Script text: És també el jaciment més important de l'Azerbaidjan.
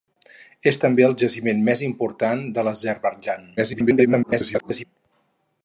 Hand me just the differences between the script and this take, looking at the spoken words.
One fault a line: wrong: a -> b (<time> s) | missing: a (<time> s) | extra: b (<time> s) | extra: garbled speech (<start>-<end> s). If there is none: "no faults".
extra: garbled speech (3.6-4.9 s)